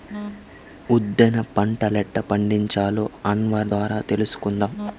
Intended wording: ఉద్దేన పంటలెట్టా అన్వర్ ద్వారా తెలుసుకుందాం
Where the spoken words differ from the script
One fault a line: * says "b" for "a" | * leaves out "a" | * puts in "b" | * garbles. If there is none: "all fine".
* puts in "పండించాలో"